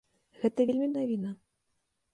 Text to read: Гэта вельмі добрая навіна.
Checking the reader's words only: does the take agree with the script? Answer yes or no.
no